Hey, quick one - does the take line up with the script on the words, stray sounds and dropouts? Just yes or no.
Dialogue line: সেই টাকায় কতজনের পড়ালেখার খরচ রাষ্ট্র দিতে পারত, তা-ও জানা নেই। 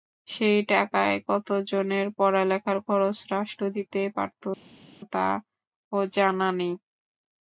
yes